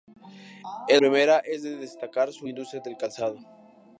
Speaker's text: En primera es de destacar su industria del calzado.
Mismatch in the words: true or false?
false